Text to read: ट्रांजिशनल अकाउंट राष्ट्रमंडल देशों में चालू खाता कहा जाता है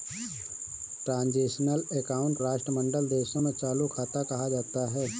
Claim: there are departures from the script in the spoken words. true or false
false